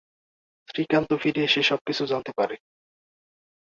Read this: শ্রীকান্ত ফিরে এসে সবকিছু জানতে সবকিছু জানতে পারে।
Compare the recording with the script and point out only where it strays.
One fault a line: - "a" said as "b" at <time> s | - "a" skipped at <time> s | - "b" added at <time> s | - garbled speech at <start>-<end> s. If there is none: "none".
- "সবকিছু জানতে" skipped at 2.3 s